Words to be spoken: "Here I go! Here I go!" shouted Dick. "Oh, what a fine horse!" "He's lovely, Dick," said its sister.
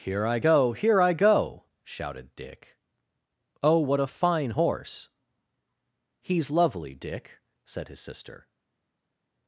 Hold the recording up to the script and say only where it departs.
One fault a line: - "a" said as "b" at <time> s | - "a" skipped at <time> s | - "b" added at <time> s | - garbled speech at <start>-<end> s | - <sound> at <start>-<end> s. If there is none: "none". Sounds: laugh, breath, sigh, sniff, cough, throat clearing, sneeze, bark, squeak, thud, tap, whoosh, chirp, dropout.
- "its" said as "his" at 7.9 s